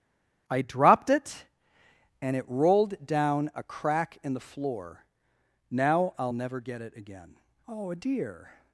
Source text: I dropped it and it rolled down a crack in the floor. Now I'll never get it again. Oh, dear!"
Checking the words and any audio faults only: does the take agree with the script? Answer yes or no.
yes